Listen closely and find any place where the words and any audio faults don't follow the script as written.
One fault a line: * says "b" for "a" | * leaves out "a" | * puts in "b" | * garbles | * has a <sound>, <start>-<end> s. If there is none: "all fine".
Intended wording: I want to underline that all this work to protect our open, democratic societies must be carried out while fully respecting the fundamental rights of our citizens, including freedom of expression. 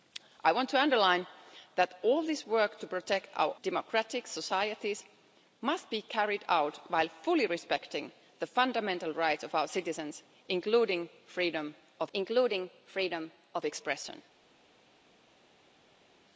* leaves out "open"
* puts in "including freedom of"